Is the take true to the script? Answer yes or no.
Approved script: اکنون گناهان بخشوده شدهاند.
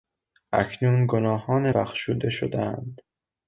yes